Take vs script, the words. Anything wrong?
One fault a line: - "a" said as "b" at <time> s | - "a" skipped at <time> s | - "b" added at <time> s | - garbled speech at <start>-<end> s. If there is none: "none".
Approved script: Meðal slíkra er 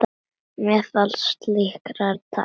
none